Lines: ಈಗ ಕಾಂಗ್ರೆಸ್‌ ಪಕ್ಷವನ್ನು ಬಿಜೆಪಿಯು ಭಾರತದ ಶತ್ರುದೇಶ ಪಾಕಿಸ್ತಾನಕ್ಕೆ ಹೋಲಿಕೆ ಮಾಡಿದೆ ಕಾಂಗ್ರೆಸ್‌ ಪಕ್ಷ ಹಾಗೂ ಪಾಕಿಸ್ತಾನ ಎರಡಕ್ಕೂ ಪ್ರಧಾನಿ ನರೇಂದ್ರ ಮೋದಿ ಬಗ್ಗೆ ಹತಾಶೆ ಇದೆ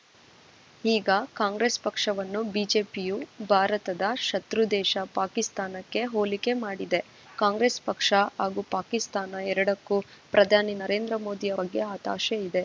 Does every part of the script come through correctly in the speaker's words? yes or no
yes